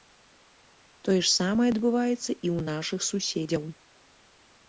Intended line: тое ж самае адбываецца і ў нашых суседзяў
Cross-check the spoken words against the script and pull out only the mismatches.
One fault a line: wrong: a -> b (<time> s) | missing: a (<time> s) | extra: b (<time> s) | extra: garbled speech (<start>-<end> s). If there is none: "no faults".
no faults